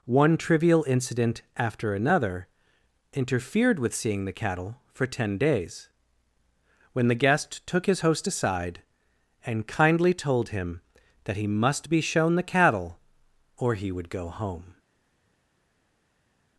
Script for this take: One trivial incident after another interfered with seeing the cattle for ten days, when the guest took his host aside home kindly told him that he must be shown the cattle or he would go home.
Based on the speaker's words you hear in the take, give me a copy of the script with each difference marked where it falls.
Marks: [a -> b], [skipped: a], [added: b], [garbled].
One trivial incident after another interfered with seeing the cattle for ten days, when the guest took his host aside [home -> and] kindly told him that he must be shown the cattle or he would go home.